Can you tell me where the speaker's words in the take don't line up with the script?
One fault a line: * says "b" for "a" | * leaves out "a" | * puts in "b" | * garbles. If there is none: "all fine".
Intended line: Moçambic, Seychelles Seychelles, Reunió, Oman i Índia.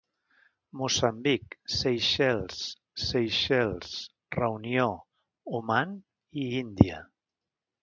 all fine